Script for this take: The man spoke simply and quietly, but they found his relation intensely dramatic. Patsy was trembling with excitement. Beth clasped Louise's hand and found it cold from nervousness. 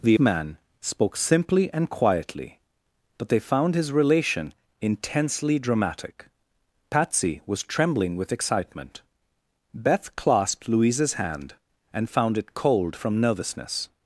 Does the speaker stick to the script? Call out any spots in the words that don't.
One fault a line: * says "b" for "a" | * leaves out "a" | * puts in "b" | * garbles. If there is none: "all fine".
all fine